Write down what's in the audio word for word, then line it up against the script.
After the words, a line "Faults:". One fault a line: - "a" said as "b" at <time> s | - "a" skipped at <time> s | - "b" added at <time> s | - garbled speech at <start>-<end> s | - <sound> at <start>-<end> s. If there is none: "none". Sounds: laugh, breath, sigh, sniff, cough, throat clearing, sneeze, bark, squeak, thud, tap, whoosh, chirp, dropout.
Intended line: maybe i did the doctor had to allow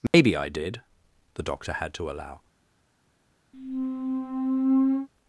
maybe i did the doctor had to allow
Faults:
- dropout at 0.1-0.1 s
- squeak at 3.5-5.1 s